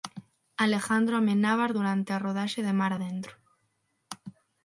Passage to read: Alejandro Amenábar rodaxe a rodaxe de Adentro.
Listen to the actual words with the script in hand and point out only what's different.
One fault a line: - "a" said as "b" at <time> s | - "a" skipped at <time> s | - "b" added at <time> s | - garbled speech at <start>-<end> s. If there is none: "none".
- "rodaxe" said as "durante" at 1.8 s
- "Mar" added at 2.8 s